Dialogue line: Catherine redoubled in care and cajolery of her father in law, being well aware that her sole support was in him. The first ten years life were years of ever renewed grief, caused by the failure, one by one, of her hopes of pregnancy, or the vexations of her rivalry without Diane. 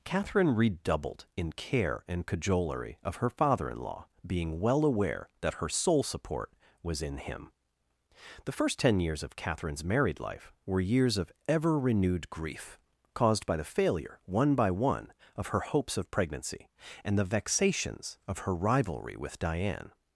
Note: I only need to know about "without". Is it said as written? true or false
false